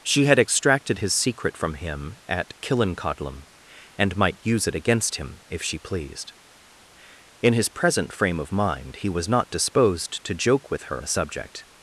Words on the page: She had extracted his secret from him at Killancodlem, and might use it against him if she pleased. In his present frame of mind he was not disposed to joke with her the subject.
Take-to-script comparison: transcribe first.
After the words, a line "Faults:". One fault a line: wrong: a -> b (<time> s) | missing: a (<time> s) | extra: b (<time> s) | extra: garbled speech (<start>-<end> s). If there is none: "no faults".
She had extracted his secret from him at Killancodlem, and might use it against him if she pleased. In his present frame of mind he was not disposed to joke with her the subject.
Faults:
no faults